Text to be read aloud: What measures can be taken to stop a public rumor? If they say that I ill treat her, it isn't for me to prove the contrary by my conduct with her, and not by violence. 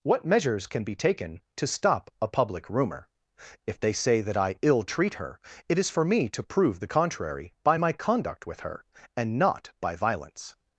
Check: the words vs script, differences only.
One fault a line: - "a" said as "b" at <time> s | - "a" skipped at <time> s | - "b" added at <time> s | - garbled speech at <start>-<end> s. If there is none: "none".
- "isn't" said as "is" at 5.8 s